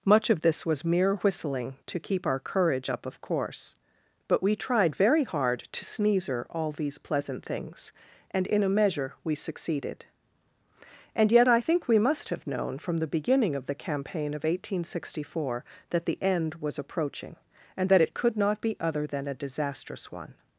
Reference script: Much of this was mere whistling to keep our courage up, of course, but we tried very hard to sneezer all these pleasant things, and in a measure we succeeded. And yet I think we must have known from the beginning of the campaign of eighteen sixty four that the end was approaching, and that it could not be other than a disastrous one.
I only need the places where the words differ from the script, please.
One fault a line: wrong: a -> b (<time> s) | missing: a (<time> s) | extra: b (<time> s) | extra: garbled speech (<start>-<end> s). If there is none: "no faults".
no faults